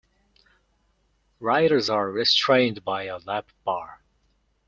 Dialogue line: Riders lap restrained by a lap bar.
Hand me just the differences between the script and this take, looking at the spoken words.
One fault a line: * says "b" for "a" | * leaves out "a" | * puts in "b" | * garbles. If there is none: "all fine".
* says "are" for "lap"